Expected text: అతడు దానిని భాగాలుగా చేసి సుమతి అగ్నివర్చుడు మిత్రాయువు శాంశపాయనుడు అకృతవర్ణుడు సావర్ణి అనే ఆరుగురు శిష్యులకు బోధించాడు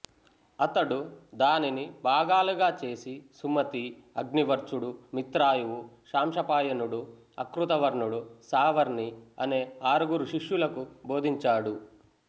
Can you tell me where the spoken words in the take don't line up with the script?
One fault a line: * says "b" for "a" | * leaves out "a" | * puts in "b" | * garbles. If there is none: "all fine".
all fine